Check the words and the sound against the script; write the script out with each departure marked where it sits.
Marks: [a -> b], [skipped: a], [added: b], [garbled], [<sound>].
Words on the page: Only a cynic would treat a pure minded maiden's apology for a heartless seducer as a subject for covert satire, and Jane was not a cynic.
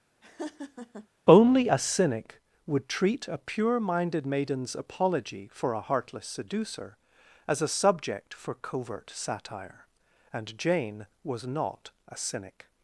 [laugh] Only a cynic would treat a pure minded maiden's apology for a heartless seducer as a subject for covert satire, and Jane was not a cynic.